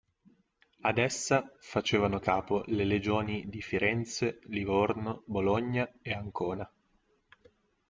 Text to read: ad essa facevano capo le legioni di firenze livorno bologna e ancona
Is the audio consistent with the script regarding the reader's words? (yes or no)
yes